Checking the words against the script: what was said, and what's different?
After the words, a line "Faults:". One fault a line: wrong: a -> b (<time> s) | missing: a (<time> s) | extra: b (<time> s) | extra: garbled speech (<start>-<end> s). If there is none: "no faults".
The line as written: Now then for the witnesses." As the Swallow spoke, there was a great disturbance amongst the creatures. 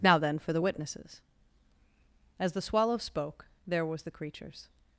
Now then for the witnesses." As the Swallow spoke, there was the creatures.
Faults:
missing: a great disturbance amongst (4.0 s)